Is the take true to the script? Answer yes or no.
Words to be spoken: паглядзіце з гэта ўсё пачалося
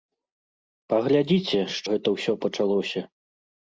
yes